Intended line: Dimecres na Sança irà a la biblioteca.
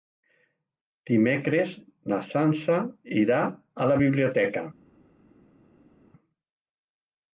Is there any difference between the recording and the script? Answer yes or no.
no